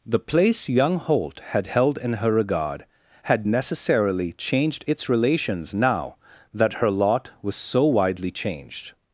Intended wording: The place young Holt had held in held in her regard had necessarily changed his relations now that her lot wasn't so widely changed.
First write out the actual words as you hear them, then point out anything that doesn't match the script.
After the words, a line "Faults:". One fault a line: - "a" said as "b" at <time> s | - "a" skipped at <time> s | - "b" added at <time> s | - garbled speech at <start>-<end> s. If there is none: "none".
The place young Holt had held in her regard had necessarily changed its relations now that her lot was so widely changed.
Faults:
- "held in" skipped at 2.1 s
- "his" said as "its" at 4.9 s
- "wasn't" said as "was" at 7.4 s